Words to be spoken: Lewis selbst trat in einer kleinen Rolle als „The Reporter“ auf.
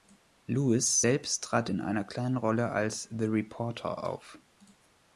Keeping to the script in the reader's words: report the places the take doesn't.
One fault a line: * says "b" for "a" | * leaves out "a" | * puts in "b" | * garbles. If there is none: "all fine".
all fine